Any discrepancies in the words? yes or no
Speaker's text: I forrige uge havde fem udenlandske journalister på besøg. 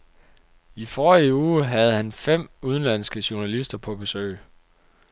yes